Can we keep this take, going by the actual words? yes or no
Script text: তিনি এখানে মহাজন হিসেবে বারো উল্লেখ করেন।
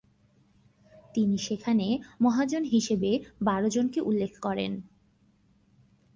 no